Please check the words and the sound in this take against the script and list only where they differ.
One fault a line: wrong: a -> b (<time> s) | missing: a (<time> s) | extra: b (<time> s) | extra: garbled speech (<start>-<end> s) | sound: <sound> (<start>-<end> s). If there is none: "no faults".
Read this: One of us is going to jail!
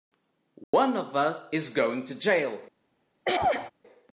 sound: dropout (0.6-0.7 s)
sound: throat clearing (3.3-3.7 s)